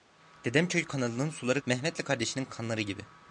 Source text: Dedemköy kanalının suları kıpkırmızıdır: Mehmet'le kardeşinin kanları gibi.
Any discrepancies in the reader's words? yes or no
yes